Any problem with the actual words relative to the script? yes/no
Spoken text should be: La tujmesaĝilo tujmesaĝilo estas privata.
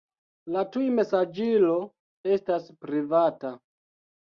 yes